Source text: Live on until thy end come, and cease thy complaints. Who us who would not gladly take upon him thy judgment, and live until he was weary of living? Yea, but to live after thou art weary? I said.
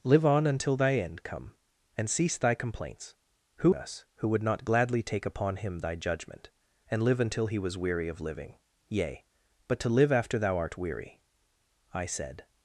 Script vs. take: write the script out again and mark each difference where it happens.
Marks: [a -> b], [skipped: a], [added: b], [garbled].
Live on until thy end come, and cease thy complaints. Who us who would not gladly take upon him thy judgment, and live until he was weary of living? Yea, but to live after thou art weary? I said.